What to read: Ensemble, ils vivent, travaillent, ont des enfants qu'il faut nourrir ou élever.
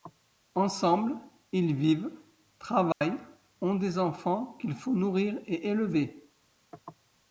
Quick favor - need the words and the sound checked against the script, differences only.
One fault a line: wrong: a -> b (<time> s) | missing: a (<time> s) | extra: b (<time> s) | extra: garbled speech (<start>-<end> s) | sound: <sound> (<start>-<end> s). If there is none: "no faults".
sound: dropout (2.9-3.0 s)
wrong: ou -> et (5.4 s)